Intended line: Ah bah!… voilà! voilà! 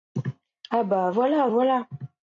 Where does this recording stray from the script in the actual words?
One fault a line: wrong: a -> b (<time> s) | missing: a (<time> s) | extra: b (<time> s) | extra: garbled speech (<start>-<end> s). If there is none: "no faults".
no faults